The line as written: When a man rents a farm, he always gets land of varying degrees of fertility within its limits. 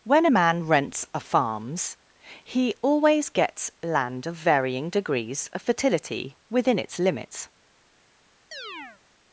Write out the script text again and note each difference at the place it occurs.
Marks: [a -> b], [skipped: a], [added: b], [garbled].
When a man rents a [farm, -> farms] he always gets land of varying degrees of fertility within its limits.